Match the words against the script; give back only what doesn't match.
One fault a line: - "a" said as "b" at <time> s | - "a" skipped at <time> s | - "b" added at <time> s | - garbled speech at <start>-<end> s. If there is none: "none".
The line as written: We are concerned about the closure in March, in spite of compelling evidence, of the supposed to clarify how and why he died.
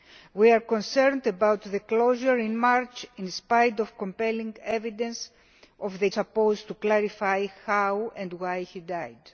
none